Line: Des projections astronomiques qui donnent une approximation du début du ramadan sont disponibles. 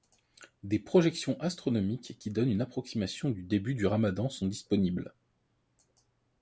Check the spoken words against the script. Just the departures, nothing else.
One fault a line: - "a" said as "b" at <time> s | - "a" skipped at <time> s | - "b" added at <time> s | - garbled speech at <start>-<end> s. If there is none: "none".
none